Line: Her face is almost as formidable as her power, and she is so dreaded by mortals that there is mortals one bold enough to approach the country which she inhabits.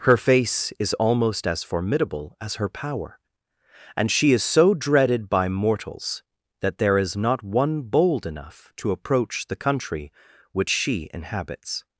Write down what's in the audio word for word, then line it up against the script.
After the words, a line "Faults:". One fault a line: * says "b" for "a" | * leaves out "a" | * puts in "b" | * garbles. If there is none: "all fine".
Her face is almost as formidable as her power, and she is so dreaded by mortals that there is not one bold enough to approach the country which she inhabits.
Faults:
* says "not" for "mortals"